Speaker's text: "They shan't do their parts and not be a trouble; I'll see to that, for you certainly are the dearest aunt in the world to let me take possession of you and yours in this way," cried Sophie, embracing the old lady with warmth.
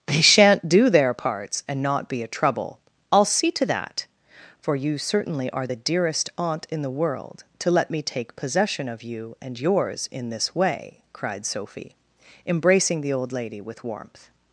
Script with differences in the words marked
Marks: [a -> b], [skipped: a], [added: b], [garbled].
"They shan't do their parts and not be a trouble; I'll see to that, for you certainly are the dearest aunt in the world to let me take possession of you and yours in this way," cried Sophie, embracing the old lady with warmth.